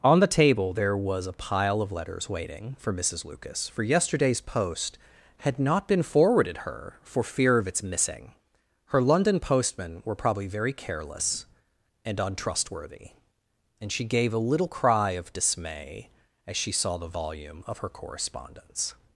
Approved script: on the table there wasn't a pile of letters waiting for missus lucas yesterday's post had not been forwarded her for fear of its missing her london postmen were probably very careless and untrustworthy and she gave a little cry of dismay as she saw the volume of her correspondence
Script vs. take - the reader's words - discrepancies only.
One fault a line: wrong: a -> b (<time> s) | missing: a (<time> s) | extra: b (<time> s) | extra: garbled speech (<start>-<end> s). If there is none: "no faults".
wrong: wasn't -> was (1.0 s)
extra: for (3.7 s)